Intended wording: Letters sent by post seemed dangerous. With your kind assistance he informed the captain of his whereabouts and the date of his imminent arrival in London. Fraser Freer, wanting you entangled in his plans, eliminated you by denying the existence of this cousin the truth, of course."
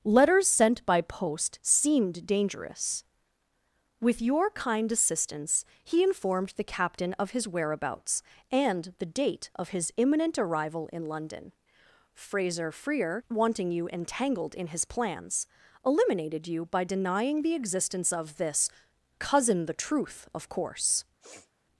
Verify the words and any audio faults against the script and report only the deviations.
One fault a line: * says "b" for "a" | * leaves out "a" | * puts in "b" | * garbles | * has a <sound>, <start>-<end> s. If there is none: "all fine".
* has a sniff, 21.2-21.5 s